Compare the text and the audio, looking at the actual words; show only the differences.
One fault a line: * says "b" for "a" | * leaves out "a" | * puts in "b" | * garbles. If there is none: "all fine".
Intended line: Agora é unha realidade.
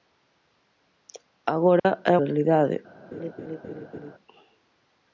* leaves out "unha"